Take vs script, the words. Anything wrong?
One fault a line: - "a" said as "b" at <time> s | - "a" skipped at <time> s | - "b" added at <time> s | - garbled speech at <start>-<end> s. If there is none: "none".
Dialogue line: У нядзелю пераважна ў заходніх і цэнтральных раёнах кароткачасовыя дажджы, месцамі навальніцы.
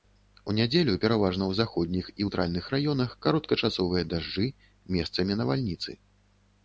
none